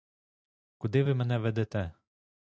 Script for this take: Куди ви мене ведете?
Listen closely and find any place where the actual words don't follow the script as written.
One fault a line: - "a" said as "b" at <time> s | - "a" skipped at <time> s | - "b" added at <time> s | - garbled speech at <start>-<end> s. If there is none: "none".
none